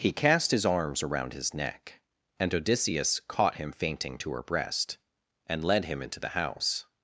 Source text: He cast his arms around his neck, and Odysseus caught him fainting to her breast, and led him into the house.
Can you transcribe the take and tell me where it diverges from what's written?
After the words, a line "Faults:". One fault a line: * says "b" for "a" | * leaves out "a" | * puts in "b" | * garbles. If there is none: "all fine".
He cast his arms around his neck, and Odysseus caught him fainting to her breast, and led him into the house.
Faults:
all fine